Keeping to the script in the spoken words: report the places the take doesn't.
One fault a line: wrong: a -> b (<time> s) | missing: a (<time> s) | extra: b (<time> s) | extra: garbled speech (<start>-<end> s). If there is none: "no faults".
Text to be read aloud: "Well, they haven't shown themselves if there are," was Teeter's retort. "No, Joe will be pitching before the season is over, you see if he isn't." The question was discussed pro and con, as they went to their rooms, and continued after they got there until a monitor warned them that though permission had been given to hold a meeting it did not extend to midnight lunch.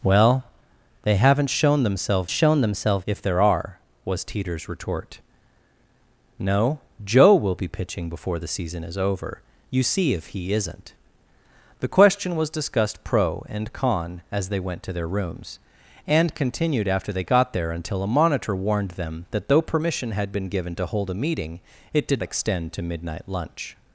extra: shown themselves (2.3 s)
missing: not (22.2 s)